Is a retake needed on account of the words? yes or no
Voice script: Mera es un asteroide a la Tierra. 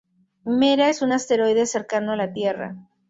yes